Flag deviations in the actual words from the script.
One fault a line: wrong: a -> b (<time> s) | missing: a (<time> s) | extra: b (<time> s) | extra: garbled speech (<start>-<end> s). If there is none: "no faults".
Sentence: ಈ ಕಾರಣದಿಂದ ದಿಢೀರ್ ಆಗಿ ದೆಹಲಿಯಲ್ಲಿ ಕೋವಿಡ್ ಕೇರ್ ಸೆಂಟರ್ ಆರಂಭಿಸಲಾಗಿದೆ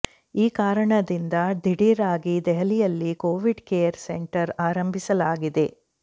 no faults